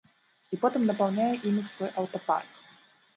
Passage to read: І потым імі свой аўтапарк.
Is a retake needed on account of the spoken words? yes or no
yes